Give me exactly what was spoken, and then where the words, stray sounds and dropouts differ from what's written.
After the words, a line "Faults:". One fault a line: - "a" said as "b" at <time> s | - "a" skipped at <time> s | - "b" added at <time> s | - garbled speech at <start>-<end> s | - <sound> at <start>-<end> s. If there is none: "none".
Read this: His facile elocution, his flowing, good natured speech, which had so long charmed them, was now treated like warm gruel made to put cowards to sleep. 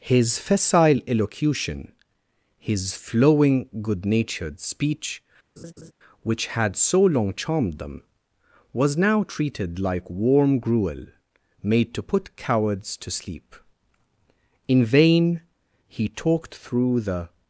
His facile elocution, his flowing, good natured speech, which had so long charmed them, was now treated like warm gruel made to put cowards to sleep. In vain he talked through the
Faults:
- laugh at 5.6-5.9 s
- "In vain he talked through the" added at 14.7 s